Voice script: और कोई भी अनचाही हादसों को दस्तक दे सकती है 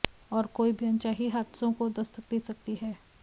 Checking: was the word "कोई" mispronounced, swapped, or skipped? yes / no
no